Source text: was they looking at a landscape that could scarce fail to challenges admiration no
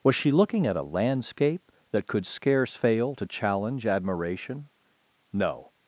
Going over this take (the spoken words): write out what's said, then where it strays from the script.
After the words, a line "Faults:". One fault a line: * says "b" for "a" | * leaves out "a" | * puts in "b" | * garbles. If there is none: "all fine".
was she looking at a landscape that could scarce fail to challenge admiration no
Faults:
* says "she" for "they"
* says "challenge" for "challenges"